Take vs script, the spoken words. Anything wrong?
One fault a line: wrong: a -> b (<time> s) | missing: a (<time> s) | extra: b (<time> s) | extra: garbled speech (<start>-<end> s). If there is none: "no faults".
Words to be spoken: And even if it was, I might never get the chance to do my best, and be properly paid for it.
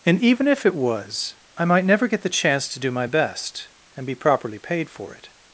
no faults